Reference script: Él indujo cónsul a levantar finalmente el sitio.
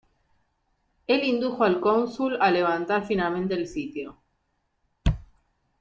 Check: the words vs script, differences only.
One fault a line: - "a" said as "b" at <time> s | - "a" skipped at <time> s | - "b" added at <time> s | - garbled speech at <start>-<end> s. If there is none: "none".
- "al" added at 1.6 s